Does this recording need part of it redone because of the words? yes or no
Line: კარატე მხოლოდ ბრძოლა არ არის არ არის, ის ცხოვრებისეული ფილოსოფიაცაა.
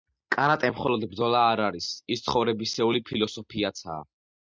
yes